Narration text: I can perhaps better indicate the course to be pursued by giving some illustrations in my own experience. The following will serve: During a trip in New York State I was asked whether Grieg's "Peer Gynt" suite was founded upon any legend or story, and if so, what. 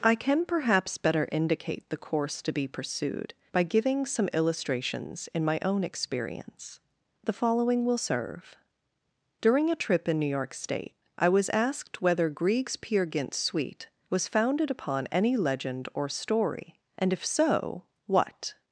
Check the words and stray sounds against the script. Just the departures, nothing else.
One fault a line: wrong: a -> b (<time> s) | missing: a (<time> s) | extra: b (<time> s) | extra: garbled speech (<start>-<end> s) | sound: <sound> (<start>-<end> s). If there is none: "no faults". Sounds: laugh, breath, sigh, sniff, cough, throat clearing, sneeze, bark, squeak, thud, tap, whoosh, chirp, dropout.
no faults